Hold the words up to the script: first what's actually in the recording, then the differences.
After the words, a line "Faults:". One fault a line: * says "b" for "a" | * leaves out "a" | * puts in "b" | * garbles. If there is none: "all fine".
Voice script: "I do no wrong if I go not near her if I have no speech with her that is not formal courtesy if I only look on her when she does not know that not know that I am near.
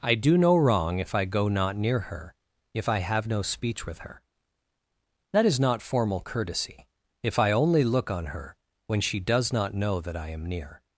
"I do no wrong if I go not near her if I have no speech with her that is not formal courtesy if I only look on her when she does not know that I am near.
Faults:
* leaves out "not know that"